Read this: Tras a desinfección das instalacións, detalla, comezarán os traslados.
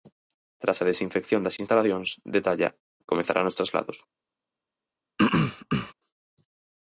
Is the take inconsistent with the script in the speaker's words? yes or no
no